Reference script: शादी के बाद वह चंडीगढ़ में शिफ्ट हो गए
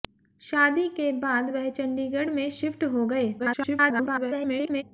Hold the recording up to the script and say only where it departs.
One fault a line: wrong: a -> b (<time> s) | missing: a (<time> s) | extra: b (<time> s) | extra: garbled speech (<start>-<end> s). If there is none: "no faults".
extra: garbled speech (3.4-4.8 s)